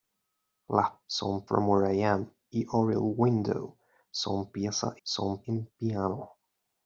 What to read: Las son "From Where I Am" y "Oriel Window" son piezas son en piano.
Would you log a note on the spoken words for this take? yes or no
no